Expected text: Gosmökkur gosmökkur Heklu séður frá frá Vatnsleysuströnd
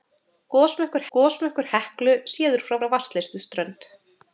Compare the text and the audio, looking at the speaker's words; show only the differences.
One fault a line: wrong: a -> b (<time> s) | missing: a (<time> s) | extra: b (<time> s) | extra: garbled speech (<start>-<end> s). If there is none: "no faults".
no faults